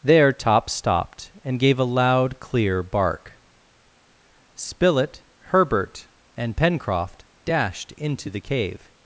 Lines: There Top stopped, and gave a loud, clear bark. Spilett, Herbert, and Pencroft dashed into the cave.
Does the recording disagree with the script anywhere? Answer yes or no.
no